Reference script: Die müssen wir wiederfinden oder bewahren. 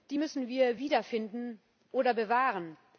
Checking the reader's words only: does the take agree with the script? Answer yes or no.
yes